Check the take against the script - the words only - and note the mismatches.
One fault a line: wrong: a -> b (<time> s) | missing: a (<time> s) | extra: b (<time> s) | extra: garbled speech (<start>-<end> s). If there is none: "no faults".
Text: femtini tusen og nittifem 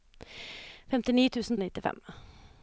no faults